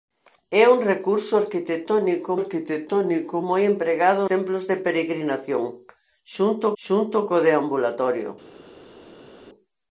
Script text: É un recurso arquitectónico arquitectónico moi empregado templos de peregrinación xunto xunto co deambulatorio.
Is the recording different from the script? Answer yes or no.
no